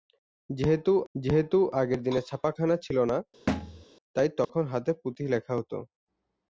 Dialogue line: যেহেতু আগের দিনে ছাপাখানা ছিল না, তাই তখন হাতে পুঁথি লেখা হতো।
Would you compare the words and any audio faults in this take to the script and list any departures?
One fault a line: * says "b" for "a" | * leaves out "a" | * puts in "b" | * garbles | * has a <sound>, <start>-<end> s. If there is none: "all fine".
* puts in "যেহেতু"
* has a thud, 3.5-3.8 s
* has a dropout, 4.4-4.5 s